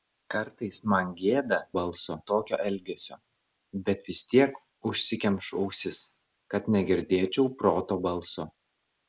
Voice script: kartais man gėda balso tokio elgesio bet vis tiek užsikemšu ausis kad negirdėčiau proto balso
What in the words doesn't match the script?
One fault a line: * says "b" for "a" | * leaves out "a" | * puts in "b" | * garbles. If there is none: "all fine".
all fine